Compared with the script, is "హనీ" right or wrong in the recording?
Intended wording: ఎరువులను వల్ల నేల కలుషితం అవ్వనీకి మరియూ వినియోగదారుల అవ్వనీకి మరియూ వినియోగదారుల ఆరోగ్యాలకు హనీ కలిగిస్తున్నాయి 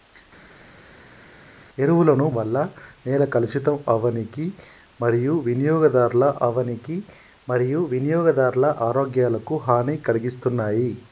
right